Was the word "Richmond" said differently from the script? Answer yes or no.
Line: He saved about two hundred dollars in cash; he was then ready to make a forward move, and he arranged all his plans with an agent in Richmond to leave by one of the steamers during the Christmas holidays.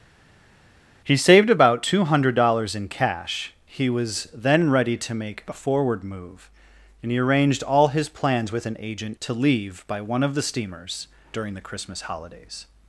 yes